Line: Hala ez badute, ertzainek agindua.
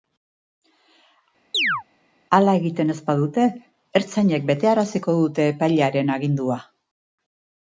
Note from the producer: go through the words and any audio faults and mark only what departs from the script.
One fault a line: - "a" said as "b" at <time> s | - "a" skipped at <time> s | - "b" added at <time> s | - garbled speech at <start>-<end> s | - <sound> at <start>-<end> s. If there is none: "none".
- chirp at 1.5-1.8 s
- "egiten" added at 2.6 s
- "betearaziko dute epailearen" added at 4.5 s